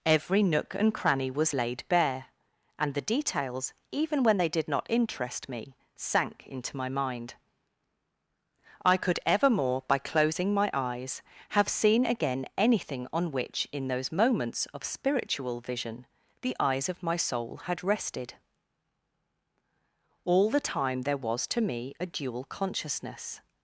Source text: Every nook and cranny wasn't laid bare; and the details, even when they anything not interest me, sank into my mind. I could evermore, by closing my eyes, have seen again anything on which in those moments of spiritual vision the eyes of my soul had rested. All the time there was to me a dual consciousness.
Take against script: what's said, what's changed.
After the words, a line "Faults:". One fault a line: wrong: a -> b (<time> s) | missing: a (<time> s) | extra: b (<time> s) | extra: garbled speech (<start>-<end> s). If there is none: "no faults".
Every nook and cranny was laid bare; and the details, even when they did not interest me, sank into my mind. I could evermore, by closing my eyes, have seen again anything on which in those moments of spiritual vision the eyes of my soul had rested. All the time there was to me a dual consciousness.
Faults:
wrong: wasn't -> was (1.3 s)
wrong: anything -> did (4.5 s)